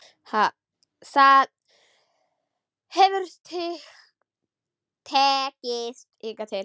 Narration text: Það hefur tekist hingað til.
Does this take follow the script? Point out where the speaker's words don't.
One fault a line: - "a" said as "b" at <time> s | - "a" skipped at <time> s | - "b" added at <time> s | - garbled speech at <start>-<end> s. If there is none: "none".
none